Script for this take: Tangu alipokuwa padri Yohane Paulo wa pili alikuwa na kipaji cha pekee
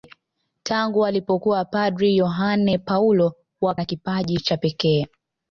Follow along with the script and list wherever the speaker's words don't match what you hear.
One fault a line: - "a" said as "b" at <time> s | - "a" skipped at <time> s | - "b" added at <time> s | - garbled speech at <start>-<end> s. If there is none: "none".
- "pili alikuwa" skipped at 3.8 s